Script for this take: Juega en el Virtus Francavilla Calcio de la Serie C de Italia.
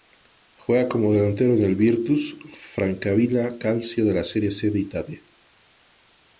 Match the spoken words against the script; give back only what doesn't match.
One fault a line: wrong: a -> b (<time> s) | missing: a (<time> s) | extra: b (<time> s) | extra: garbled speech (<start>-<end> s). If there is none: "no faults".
extra: como delantero (0.9 s)